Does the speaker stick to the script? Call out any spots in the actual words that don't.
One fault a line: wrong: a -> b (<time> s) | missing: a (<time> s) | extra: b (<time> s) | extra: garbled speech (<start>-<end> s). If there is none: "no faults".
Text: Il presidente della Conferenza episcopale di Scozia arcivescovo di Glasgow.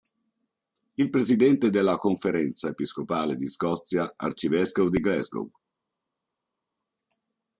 no faults